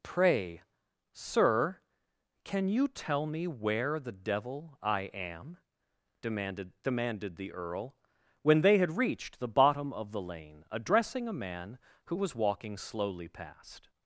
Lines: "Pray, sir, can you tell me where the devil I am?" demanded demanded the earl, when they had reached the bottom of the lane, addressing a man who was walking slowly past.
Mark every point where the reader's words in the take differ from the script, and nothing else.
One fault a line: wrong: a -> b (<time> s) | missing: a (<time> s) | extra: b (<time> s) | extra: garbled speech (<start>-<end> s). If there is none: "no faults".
no faults